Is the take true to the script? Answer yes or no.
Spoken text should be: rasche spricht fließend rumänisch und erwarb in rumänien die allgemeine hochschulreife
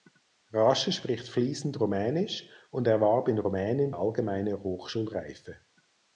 no